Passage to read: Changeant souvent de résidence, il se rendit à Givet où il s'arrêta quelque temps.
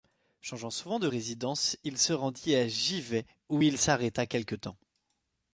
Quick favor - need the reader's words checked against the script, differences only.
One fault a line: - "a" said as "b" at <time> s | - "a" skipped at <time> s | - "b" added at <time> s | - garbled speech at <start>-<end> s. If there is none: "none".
none